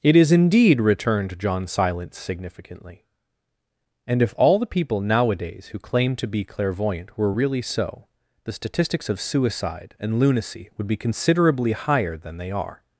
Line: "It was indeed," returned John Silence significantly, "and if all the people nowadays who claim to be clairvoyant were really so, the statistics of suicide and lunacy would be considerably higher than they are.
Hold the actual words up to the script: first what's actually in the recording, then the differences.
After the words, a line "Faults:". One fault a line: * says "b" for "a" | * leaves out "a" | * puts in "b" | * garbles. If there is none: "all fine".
"It is indeed," returned John Silence significantly, "and if all the people nowadays who claim to be clairvoyant were really so, the statistics of suicide and lunacy would be considerably higher than they are.
Faults:
* says "is" for "was"